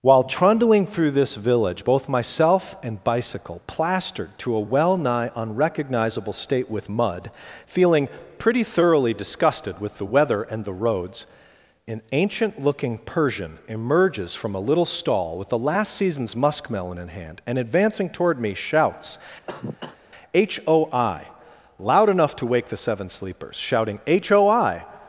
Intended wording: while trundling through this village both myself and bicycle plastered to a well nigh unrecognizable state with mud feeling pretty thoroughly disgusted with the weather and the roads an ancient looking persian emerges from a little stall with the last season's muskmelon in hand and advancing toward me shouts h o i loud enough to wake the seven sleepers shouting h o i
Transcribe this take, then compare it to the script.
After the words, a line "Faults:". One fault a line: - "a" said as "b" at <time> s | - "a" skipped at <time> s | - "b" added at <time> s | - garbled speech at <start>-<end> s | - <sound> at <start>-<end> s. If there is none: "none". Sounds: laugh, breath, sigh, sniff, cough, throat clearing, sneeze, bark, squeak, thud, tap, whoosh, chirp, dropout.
while trundling through this village both myself and bicycle plastered to a well nigh unrecognizable state with mud feeling pretty thoroughly disgusted with the weather and the roads an ancient looking persian emerges from a little stall with the last season's muskmelon in hand and advancing toward me shouts h o i loud enough to wake the seven sleepers shouting h o i
Faults:
- cough at 19.5-20.0 s